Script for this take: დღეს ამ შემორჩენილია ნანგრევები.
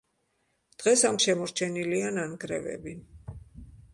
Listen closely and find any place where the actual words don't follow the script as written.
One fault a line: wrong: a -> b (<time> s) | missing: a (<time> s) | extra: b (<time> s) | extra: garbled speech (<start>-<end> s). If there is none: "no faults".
no faults